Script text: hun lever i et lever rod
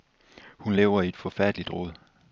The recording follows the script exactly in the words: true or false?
false